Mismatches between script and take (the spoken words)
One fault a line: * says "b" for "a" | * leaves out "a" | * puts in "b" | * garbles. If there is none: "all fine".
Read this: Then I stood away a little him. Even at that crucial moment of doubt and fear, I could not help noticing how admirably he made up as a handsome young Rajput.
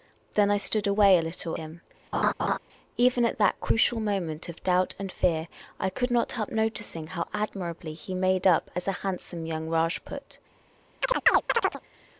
all fine